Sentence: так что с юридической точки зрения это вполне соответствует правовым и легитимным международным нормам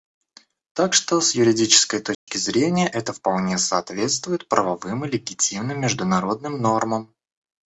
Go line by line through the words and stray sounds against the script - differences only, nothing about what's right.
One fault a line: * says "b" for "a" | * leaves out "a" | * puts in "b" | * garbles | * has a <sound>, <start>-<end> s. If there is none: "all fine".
* has a dropout, 2.1-2.3 s